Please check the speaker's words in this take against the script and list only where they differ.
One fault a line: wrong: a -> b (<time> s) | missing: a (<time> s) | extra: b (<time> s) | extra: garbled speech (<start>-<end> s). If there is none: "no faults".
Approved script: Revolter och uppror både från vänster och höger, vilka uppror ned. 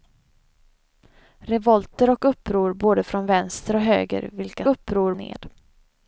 no faults